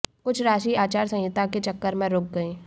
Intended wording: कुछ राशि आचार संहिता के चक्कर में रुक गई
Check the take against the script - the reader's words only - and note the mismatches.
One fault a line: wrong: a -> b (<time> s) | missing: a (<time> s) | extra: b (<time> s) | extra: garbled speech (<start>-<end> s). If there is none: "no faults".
no faults